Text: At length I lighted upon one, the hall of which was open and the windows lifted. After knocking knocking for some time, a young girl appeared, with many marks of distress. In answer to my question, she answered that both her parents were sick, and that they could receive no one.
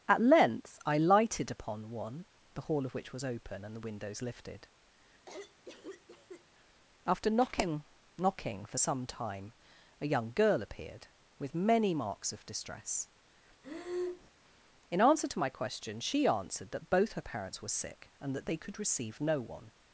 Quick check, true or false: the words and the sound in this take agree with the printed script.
false